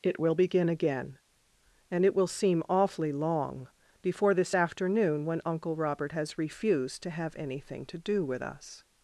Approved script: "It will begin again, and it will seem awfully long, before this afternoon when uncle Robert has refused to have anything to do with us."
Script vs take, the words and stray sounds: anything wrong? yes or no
no